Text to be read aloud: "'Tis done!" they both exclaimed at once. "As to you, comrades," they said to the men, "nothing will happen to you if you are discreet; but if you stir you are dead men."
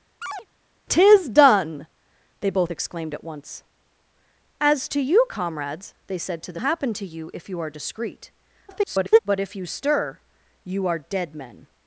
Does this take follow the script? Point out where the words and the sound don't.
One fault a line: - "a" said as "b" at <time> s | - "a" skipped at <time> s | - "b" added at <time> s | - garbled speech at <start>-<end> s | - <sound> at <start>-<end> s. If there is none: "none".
- chirp at 0.2-0.5 s
- "men nothing will" skipped at 6.6 s
- garbled speech at 8.7-9.2 s